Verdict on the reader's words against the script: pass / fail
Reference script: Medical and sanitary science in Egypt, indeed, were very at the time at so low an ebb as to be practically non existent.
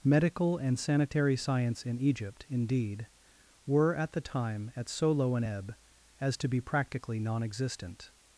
fail